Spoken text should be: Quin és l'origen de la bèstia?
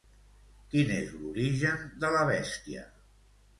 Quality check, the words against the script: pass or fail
pass